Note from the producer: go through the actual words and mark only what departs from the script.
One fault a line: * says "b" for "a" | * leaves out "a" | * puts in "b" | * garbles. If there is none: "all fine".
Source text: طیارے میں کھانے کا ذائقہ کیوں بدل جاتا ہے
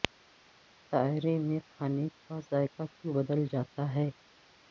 all fine